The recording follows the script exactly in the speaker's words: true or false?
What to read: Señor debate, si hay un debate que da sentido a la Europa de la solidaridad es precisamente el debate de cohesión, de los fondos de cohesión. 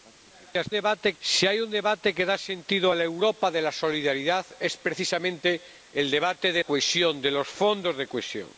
true